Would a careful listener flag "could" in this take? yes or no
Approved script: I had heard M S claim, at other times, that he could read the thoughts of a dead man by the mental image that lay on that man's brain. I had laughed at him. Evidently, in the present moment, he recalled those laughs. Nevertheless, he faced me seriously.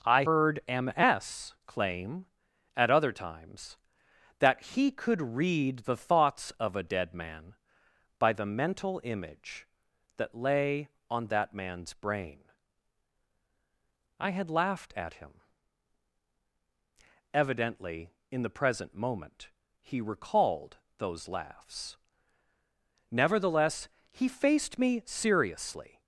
no